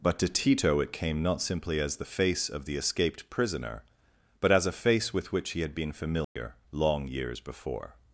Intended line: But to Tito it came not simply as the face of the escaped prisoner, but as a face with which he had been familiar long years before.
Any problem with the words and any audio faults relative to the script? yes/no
yes